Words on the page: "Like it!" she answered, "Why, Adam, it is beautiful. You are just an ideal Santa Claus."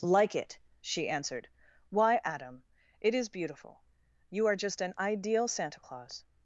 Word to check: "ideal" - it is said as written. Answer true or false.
true